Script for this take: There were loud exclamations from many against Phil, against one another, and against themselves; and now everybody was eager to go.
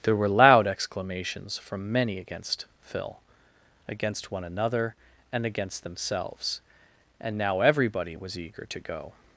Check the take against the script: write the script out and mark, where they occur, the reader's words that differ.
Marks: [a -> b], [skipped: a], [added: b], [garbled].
There were loud exclamations from many against Phil, against one another, and against themselves; and now everybody was eager to go.